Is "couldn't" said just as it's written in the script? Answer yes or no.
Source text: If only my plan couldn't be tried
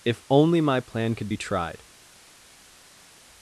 no